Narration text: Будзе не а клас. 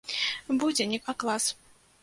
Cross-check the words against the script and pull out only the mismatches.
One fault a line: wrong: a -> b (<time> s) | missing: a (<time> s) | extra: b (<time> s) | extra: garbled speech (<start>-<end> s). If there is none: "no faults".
no faults